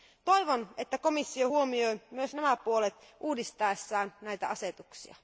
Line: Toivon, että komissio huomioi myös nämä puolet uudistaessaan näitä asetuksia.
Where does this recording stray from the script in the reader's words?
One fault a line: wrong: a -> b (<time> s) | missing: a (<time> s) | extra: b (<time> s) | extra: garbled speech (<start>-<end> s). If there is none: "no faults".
no faults